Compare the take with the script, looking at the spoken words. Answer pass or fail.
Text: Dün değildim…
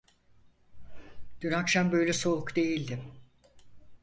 fail